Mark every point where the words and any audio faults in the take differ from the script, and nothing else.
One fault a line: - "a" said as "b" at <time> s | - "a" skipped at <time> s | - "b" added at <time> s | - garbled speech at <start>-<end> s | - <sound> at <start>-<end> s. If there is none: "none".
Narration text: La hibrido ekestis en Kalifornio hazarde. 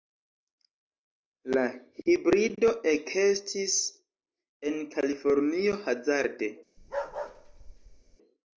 - bark at 6.8-8.2 s